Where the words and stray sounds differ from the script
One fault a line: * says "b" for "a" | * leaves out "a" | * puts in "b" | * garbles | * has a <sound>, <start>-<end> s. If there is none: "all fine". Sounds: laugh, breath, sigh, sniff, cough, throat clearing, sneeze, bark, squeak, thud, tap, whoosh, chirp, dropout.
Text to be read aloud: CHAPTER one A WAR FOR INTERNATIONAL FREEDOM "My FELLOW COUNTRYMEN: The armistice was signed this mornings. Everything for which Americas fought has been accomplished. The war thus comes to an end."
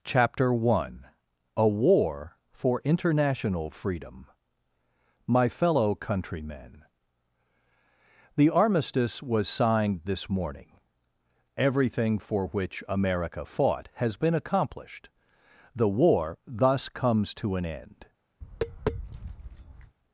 * says "morning" for "mornings"
* says "America" for "Americas"
* has a tap, 18.4-20.0 s